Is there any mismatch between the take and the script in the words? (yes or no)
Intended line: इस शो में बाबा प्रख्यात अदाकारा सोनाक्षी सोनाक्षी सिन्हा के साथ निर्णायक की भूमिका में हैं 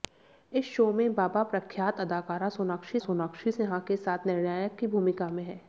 no